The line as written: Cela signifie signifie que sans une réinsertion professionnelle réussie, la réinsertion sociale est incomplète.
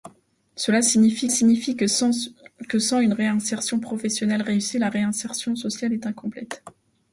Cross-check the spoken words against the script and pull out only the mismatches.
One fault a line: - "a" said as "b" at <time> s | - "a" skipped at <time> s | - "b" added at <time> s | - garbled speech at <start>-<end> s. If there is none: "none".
none